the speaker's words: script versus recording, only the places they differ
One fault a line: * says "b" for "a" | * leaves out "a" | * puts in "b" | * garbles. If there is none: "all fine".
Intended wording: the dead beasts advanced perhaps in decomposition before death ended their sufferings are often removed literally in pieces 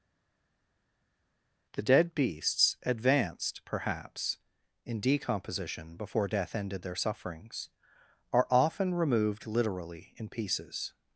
all fine